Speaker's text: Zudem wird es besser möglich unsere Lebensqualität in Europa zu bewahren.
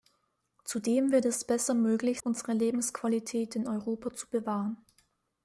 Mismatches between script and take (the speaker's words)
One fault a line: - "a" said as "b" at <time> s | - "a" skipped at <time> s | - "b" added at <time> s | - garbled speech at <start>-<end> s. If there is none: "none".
none